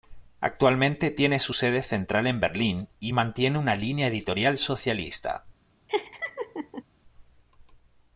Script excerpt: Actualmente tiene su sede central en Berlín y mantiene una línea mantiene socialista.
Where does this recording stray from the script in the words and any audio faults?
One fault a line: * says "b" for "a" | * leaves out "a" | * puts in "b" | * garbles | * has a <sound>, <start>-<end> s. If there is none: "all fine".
* says "editorial" for "mantiene"
* has a laugh, 5.9-6.8 s